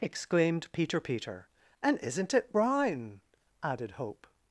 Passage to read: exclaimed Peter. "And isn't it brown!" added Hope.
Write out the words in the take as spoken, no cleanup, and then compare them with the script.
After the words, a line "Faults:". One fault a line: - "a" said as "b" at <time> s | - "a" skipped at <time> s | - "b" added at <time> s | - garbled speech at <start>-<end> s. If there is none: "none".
exclaimed Peter Peter. "And isn't it brown!" added Hope.
Faults:
- "Peter" added at 1.0 s